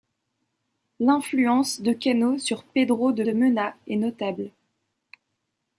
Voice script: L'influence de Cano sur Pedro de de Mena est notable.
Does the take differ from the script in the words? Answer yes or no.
no